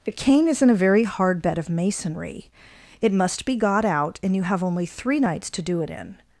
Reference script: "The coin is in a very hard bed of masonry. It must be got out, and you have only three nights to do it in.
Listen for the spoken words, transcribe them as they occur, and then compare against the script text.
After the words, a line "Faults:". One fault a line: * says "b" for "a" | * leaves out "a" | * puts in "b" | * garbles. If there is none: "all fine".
"The cane is in a very hard bed of masonry. It must be got out, and you have only three nights to do it in.
Faults:
* says "cane" for "coin"